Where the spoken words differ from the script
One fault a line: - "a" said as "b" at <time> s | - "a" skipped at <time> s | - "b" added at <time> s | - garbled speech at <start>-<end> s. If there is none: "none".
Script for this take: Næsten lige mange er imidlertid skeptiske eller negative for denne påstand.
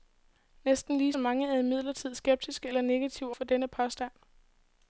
none